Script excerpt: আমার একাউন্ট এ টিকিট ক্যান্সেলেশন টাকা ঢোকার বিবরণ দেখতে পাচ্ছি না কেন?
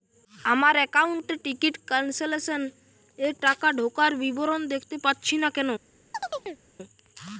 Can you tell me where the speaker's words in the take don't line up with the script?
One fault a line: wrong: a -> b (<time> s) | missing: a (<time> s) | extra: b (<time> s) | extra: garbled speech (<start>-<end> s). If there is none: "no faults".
extra: এর (3.2 s)